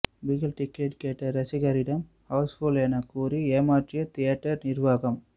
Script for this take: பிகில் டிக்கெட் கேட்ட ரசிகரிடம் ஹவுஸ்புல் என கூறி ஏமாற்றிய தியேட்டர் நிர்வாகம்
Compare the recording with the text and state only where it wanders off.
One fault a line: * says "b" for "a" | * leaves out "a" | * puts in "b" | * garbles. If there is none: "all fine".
all fine